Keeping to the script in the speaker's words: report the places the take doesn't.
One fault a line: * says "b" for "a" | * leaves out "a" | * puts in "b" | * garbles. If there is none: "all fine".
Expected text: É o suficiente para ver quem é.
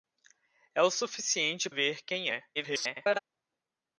* leaves out "para"
* garbles